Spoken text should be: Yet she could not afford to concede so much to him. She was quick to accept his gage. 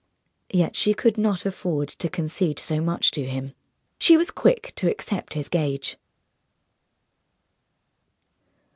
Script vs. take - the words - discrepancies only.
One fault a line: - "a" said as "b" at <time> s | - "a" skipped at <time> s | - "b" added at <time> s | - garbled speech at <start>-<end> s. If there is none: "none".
none